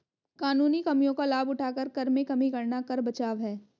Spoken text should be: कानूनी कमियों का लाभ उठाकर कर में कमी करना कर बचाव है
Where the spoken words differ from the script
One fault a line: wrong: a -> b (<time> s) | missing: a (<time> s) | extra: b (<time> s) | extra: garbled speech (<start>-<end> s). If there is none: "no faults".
no faults